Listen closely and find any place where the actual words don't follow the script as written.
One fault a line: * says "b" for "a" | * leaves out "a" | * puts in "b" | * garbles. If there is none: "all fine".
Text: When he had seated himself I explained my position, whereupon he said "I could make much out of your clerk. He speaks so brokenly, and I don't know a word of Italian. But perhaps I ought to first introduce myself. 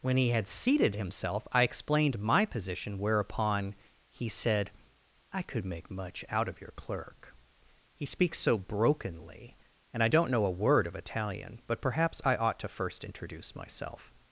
all fine